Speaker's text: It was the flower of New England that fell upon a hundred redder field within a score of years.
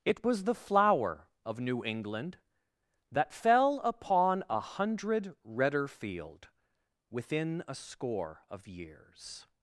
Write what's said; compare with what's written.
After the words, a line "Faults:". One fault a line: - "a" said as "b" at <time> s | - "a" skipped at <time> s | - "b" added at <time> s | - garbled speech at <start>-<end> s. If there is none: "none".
It was the flower of New England that fell upon a hundred redder field within a score of years.
Faults:
none